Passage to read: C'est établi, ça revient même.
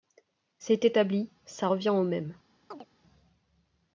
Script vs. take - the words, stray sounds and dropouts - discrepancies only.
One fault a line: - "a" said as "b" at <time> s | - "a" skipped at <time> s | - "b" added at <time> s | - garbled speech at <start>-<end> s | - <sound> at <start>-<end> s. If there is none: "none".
- "au" added at 1.9 s
- chirp at 2.7-2.9 s